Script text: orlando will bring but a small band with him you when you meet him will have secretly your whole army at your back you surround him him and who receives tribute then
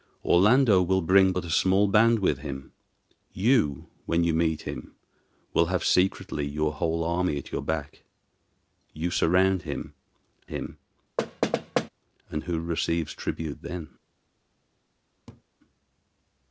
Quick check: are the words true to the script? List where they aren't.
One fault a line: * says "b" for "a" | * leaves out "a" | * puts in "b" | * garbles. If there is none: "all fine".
all fine